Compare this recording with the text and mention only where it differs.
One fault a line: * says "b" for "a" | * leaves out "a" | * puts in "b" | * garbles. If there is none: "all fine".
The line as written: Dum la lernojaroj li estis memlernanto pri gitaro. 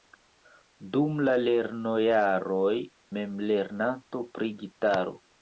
* leaves out "li estis"